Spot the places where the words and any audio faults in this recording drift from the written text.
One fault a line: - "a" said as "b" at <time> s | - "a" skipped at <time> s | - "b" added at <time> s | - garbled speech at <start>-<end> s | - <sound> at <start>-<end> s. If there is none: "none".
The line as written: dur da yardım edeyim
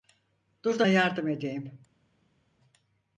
none